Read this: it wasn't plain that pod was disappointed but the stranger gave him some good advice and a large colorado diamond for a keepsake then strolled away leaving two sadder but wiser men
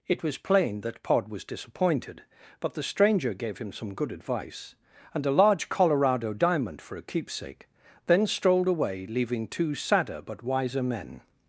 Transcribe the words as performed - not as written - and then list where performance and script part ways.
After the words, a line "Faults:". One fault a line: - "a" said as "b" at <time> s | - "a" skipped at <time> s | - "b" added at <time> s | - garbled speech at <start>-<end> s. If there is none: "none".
it was plain that pod was disappointed but the stranger gave him some good advice and a large colorado diamond for a keepsake then strolled away leaving two sadder but wiser men
Faults:
- "wasn't" said as "was" at 0.2 s